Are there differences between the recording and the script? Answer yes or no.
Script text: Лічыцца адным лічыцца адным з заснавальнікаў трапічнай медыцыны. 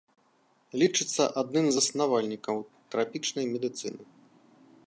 yes